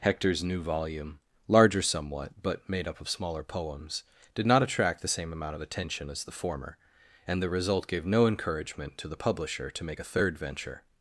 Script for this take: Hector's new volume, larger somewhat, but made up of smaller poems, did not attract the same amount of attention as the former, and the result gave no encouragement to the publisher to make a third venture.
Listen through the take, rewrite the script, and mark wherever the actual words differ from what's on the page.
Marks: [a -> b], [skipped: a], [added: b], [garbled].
Hector's new volume, larger somewhat, but made up of smaller poems, did not attract the same amount of attention as the former, and the result gave no encouragement to the publisher to make a third venture.